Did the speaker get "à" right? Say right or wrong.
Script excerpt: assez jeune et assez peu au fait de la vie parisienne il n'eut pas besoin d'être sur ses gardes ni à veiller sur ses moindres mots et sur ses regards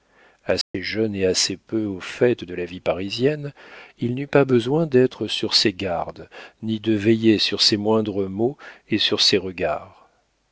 wrong